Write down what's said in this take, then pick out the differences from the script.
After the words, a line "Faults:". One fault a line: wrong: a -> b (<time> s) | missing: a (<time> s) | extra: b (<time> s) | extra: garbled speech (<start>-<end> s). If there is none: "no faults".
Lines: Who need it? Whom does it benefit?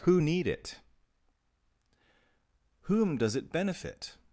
Who need it? Whom does it benefit?
Faults:
no faults